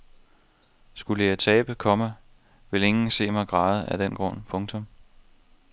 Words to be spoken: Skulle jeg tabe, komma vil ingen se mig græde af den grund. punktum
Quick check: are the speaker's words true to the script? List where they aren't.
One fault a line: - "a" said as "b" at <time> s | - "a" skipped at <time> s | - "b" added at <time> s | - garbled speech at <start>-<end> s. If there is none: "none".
none